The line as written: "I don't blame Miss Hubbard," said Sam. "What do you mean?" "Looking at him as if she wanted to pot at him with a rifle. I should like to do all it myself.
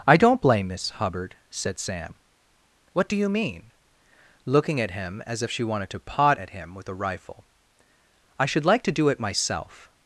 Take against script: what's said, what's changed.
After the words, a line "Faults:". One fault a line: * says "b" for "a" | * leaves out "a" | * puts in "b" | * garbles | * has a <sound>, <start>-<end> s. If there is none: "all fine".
"I don't blame Miss Hubbard," said Sam. "What do you mean?" "Looking at him as if she wanted to pot at him with a rifle. I should like to do it myself.
Faults:
* leaves out "all"